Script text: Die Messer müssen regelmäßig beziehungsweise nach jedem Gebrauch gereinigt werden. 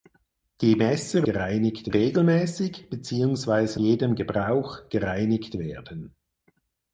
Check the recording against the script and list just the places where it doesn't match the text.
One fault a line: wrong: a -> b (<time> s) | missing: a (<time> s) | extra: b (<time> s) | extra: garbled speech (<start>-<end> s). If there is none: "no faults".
wrong: müssen -> gereinigt (1.2 s)
missing: nach (3.8 s)